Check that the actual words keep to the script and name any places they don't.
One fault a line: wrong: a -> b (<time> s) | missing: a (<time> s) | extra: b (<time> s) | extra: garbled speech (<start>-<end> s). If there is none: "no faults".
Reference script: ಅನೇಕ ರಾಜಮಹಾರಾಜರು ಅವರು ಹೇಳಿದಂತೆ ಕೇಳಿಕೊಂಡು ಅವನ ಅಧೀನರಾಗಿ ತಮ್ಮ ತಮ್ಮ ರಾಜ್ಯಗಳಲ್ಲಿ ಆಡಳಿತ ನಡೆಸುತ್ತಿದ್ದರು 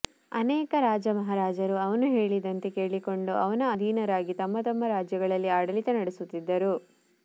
wrong: ಅವರು -> ಅವನು (1.8 s)